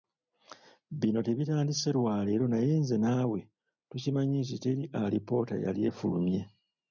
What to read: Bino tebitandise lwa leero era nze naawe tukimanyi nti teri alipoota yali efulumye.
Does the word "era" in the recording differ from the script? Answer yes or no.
yes